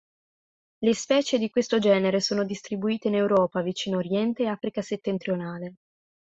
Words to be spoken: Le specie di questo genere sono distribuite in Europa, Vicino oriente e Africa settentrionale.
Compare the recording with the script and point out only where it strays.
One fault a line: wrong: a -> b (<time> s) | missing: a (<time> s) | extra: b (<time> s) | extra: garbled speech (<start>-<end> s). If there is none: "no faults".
no faults